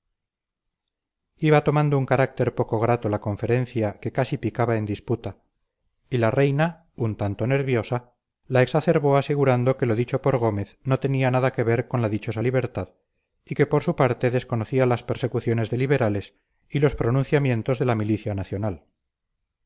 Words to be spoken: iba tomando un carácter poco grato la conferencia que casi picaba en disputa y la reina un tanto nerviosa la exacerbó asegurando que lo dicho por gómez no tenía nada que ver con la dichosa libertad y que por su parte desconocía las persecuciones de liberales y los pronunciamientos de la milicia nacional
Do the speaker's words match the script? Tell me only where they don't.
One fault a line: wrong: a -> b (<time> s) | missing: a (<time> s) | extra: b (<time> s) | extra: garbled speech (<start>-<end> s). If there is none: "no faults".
no faults